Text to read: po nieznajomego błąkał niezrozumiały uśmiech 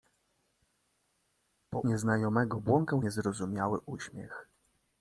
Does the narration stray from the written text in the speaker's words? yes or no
no